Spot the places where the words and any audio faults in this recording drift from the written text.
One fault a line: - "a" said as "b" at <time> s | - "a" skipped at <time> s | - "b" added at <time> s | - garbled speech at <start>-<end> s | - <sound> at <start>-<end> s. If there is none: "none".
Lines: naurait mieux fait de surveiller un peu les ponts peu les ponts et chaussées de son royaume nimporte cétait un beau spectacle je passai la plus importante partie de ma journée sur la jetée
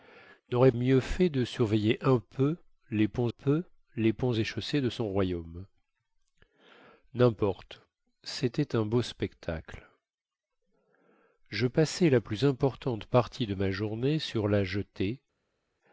none